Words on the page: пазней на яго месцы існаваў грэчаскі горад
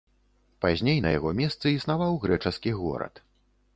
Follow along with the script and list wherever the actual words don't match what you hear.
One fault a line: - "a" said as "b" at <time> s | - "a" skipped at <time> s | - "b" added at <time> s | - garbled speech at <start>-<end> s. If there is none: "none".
none